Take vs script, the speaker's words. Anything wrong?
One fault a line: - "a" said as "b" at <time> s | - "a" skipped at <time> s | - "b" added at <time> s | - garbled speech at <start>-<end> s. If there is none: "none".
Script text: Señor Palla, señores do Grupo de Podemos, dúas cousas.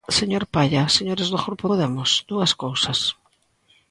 - "de" skipped at 1.6 s